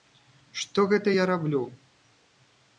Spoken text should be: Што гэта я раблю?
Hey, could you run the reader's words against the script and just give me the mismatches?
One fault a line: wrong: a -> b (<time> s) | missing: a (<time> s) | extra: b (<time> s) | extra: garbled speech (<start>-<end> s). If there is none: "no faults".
no faults